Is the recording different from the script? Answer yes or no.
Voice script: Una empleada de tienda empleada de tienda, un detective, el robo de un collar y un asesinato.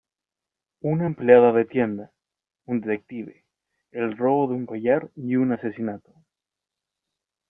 yes